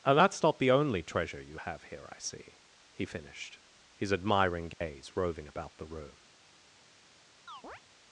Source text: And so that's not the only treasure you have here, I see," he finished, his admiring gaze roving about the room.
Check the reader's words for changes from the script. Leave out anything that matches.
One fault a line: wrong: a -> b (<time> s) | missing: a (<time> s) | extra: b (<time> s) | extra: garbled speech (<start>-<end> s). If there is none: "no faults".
missing: so (0.2 s)